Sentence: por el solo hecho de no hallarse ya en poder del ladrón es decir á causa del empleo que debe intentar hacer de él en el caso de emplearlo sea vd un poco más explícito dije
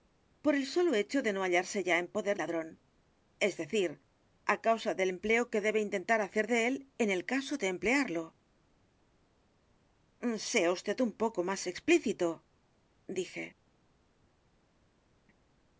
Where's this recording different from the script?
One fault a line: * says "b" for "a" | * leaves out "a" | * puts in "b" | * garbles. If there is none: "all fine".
* leaves out "del"